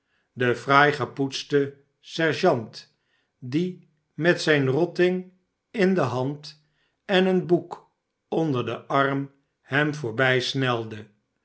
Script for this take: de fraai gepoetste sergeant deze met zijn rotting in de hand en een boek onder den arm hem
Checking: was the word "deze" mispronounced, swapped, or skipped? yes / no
yes